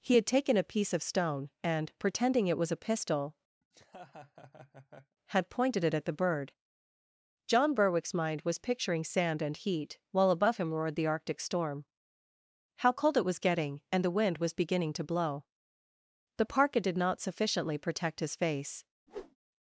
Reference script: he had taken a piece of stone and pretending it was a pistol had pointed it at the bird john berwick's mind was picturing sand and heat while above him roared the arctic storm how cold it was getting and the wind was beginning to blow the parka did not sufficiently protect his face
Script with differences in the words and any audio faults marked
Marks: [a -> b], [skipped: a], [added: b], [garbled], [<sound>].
he had taken a piece of stone and pretending it was a pistol [laugh] had pointed it at the bird john berwick's mind was picturing sand and heat while above him roared the arctic storm how cold it was getting and the wind was beginning to blow the parka did not sufficiently protect his face [whoosh]